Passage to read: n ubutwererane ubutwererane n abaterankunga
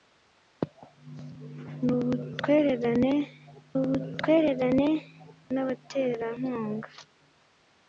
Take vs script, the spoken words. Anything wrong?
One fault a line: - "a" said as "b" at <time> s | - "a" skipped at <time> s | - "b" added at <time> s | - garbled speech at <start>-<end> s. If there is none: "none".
none